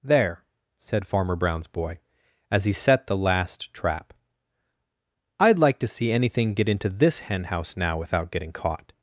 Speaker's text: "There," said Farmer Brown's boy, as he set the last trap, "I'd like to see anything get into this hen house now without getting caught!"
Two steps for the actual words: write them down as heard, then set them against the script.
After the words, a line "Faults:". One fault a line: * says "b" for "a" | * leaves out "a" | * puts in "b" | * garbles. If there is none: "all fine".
"There," said Farmer Brown's boy, as he set the last trap, "I'd like to see anything get into this hen house now without getting caught!"
Faults:
all fine